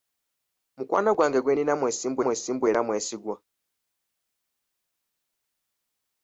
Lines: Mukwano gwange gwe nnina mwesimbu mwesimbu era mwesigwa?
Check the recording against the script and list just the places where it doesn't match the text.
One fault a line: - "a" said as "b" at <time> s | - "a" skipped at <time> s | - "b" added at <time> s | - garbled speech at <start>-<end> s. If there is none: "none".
none